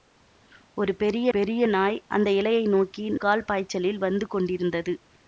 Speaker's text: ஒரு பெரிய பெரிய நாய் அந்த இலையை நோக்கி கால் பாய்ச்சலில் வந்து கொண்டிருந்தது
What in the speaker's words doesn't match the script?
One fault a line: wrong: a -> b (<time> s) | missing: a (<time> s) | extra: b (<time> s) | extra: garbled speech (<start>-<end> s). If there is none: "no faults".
no faults